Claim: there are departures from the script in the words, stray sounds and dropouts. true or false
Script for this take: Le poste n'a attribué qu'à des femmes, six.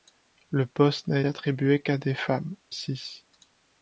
false